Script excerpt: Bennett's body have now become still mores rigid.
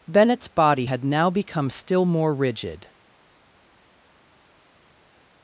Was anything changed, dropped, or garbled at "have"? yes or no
yes